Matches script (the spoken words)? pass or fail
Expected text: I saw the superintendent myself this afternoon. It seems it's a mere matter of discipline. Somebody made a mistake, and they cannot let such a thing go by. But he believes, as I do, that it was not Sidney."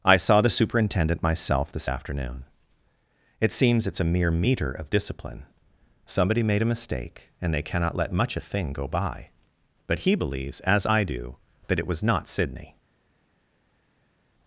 fail